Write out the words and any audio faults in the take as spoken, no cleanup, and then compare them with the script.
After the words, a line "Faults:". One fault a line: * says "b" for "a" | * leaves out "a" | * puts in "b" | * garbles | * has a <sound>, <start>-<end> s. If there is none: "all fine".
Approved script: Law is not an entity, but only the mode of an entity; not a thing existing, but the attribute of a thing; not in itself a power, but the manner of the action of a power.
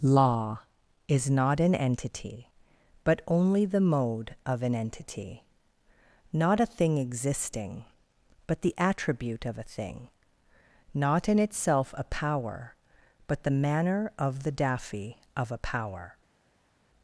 Law is not an entity, but only the mode of an entity; not a thing existing, but the attribute of a thing; not in itself a power, but the manner of the daffy of a power.
Faults:
* says "daffy" for "action"